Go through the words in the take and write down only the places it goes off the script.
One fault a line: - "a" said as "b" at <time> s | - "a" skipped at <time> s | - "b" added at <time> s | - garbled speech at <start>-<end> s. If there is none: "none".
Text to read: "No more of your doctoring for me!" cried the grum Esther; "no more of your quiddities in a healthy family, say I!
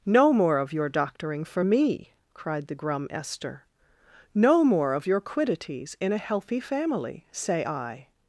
none